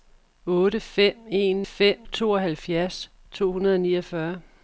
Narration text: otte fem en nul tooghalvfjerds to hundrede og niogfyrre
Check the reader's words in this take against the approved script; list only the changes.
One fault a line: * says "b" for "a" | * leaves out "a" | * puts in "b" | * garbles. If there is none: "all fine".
* says "fem" for "nul"